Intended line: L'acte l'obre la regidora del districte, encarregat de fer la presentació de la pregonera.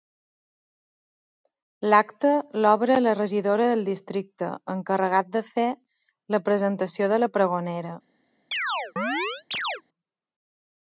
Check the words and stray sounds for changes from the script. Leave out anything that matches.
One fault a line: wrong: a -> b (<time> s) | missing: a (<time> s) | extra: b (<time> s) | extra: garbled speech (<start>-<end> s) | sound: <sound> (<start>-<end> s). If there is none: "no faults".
sound: chirp (8.5-9.8 s)